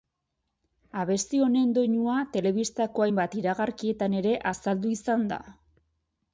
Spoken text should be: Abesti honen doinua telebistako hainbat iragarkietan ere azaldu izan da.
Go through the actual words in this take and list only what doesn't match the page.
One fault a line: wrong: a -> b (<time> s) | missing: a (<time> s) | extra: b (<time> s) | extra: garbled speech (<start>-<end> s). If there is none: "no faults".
no faults